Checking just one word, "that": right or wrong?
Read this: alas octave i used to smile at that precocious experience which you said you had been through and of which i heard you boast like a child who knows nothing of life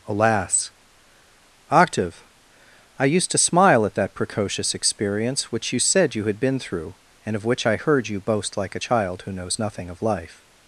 right